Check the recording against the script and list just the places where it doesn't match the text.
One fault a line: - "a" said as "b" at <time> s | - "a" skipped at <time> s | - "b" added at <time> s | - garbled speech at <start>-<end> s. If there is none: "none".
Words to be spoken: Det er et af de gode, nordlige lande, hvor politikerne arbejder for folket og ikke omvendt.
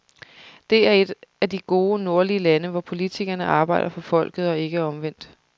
none